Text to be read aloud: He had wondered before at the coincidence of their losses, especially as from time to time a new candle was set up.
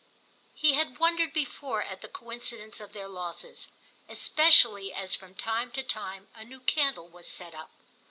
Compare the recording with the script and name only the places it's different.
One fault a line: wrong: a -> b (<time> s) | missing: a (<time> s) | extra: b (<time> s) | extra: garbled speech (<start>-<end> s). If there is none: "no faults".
no faults